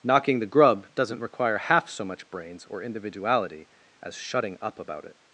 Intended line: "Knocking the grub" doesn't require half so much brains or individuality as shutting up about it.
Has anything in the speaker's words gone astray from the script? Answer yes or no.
no